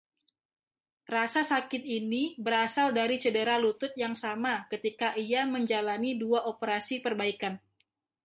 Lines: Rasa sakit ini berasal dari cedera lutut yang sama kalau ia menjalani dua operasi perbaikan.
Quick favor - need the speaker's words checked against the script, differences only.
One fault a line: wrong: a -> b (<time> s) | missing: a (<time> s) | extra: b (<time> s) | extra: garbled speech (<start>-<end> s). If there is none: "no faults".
wrong: kalau -> ketika (4.7 s)